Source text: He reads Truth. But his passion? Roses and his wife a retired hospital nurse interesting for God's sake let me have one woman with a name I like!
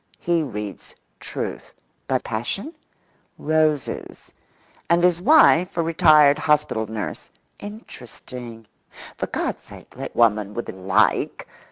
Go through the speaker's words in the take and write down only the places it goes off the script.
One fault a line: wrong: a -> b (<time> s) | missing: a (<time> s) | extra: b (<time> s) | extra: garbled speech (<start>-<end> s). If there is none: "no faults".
missing: his (2.2 s)
missing: me have one (10.1 s)
missing: name I (10.7 s)